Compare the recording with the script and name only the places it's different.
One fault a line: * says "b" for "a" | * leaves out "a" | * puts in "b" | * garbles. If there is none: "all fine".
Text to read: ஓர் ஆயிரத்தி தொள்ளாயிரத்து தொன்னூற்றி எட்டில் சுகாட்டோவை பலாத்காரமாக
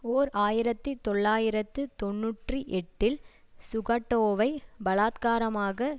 all fine